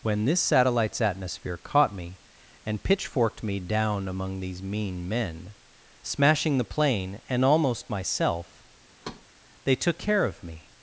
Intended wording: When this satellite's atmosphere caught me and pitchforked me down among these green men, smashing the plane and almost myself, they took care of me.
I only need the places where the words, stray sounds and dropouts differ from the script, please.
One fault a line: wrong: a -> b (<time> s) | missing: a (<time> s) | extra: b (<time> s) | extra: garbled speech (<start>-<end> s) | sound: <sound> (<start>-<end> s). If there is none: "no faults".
wrong: green -> mean (4.6 s)
sound: thud (9.0-9.3 s)